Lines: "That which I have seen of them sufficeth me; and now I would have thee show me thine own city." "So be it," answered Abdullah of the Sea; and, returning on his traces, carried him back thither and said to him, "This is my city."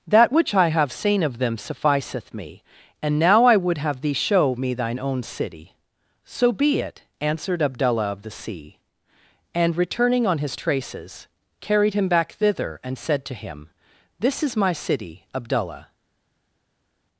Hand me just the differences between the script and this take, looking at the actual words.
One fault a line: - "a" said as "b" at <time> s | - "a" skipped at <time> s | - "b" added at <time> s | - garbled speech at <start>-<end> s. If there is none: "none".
- "Abdullah" added at 15.3 s